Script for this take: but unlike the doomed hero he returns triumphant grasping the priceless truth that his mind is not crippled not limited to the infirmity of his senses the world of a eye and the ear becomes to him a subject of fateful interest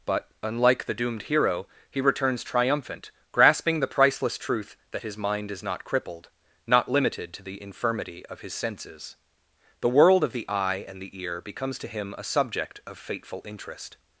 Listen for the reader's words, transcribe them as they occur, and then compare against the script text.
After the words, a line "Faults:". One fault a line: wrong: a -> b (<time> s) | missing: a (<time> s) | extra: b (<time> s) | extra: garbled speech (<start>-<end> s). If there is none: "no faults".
but unlike the doomed hero he returns triumphant grasping the priceless truth that his mind is not crippled not limited to the infirmity of his senses the world of the eye and the ear becomes to him a subject of fateful interest
Faults:
wrong: a -> the (10.3 s)